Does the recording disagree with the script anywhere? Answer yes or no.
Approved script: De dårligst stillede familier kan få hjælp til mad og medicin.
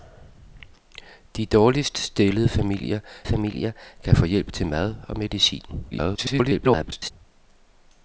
yes